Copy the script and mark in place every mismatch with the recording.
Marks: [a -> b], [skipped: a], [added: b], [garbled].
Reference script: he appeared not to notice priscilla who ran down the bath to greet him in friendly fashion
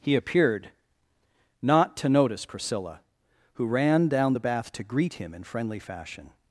he appeared not to notice priscilla who ran down the bath to greet him in friendly fashion